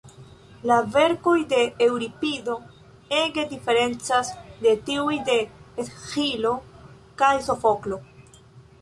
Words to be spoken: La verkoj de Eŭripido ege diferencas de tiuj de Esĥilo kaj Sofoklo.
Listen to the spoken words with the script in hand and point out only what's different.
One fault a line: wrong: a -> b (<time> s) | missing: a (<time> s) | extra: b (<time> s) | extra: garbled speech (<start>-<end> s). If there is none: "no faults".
no faults